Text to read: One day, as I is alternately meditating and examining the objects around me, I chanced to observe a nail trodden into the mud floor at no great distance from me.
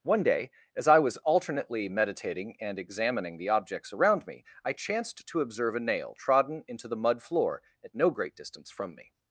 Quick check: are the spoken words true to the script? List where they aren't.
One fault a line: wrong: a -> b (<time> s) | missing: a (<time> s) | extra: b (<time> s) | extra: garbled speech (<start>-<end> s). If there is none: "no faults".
wrong: is -> was (1.0 s)